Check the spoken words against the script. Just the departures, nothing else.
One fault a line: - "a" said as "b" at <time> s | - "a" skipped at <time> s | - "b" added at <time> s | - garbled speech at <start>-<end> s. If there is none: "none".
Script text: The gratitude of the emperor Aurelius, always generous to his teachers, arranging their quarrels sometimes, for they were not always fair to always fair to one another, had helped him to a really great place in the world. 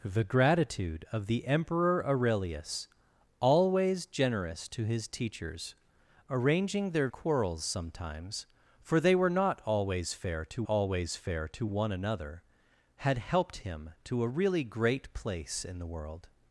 none